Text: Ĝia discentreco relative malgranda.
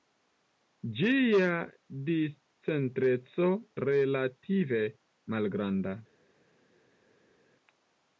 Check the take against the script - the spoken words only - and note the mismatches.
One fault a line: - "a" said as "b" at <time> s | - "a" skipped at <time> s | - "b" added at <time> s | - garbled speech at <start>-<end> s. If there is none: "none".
none